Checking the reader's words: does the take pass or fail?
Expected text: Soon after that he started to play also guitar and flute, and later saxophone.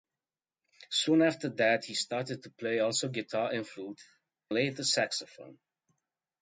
fail